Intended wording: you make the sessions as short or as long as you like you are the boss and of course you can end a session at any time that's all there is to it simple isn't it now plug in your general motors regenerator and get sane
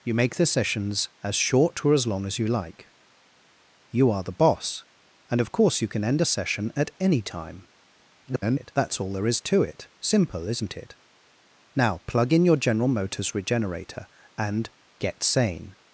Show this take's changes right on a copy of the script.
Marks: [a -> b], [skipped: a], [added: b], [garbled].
you make the sessions as short or as long as you like you are the boss and of course you can end a session at any time [garbled] that's all there is to it simple isn't it now plug in your general motors regenerator and get sane